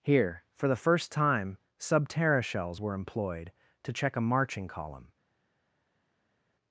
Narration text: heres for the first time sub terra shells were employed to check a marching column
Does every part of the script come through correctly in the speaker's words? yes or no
no